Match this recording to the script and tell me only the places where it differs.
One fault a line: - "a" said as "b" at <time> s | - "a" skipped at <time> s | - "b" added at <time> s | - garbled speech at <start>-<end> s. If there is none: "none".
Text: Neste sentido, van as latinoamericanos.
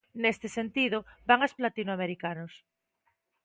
none